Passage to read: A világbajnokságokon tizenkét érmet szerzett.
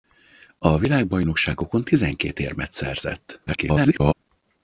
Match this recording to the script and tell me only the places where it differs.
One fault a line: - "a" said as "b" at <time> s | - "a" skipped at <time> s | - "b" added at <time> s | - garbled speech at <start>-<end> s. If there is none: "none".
- garbled speech at 3.5-4.1 s